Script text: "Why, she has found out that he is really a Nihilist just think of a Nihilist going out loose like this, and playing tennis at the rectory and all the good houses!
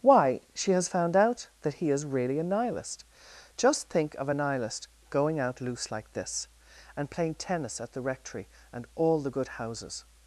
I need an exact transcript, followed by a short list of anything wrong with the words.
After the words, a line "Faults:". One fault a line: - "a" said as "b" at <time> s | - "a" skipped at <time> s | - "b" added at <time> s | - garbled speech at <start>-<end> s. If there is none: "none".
"Why, she has found out that he is really a Nihilist just think of a Nihilist going out loose like this, and playing tennis at the rectory and all the good houses!
Faults:
none